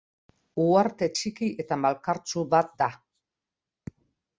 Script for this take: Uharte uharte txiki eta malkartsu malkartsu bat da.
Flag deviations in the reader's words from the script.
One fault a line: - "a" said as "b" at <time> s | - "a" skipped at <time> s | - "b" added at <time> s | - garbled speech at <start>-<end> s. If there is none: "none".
- "uharte" skipped at 1.1 s
- "malkartsu" skipped at 2.5 s